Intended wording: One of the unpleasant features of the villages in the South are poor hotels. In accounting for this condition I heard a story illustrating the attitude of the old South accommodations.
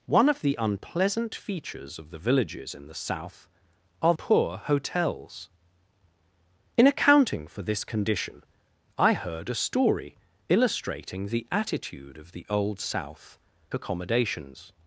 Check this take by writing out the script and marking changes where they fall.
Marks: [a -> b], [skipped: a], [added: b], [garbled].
One of the unpleasant features of the villages in the South are poor hotels. In accounting for this condition I heard a story illustrating the attitude of the old South accommodations.